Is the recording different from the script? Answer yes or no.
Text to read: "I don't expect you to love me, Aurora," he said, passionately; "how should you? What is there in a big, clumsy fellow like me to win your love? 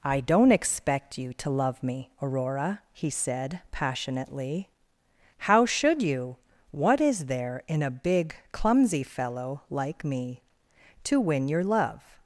no